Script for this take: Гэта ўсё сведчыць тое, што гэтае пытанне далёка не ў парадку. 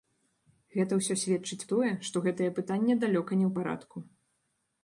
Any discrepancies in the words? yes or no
no